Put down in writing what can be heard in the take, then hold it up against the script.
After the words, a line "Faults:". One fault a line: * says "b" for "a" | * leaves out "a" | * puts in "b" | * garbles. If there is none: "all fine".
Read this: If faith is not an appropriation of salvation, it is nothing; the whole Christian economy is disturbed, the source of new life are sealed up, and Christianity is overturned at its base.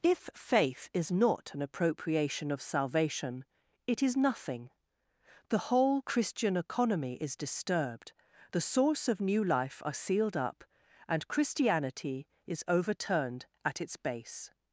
If faith is not an appropriation of salvation, it is nothing; the whole Christian economy is disturbed, the source of new life are sealed up, and Christianity is overturned at its base.
Faults:
all fine